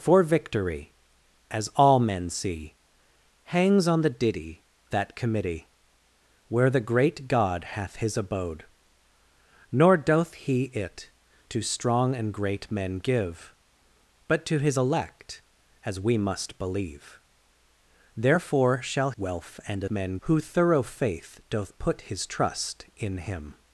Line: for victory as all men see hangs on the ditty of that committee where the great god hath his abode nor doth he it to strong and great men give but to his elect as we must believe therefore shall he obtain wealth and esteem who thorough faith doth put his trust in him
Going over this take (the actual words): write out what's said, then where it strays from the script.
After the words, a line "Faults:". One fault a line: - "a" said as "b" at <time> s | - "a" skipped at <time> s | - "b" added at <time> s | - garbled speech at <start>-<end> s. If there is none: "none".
for victory as all men see hangs on the ditty that committee where the great god hath his abode nor doth he it to strong and great men give but to his elect as we must believe therefore shall wealth and men who thorough faith doth put his trust in him
Faults:
- "of" skipped at 4.6 s
- "he obtain" skipped at 19.1 s
- "esteem" said as "men" at 19.9 s